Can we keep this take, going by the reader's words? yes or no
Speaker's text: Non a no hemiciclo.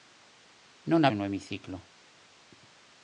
yes